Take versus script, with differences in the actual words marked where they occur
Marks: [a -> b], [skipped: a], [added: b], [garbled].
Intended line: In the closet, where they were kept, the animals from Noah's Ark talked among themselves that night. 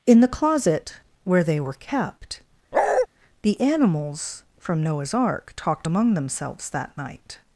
In the closet, where they were kept, the animals from Noah's Ark talked among themselves that night.